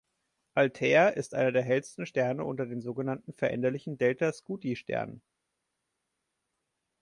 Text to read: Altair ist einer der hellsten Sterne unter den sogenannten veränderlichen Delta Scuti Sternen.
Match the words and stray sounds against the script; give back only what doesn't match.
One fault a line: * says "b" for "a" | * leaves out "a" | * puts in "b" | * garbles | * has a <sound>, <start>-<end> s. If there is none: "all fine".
all fine